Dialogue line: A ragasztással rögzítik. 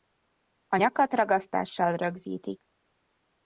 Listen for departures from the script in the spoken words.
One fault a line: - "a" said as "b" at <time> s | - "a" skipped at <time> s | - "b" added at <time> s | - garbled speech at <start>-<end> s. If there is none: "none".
- "nyakat" added at 0.7 s